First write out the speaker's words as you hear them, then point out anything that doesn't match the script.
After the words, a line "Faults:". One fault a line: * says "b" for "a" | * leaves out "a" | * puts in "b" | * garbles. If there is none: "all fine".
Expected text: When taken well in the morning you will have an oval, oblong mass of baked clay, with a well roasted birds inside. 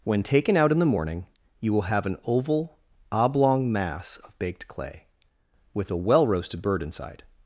When taken out in the morning you will have an oval, oblong mass of baked clay, with a well roasted bird inside.
Faults:
* says "out" for "well"
* says "bird" for "birds"